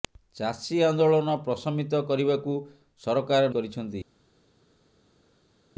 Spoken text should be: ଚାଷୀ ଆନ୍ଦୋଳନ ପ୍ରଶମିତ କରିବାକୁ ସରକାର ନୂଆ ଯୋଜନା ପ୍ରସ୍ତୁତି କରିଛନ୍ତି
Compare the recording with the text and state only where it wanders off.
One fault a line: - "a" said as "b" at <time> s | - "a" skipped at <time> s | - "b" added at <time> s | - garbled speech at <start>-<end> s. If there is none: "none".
- "ନୂଆ ଯୋଜନା ପ୍ରସ୍ତୁତି" skipped at 3.5 s